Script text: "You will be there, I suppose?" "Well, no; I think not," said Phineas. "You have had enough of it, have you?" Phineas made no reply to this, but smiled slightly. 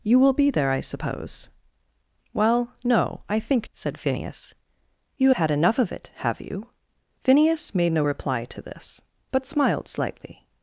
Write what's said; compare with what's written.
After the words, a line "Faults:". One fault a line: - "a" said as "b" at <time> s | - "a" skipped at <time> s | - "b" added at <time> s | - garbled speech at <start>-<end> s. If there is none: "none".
"You will be there, I suppose?" "Well, no; I think," said Phineas. "You had enough of it, have you?" Phineas made no reply to this, but smiled slightly.
Faults:
- "not" skipped at 3.7 s
- "have" skipped at 5.3 s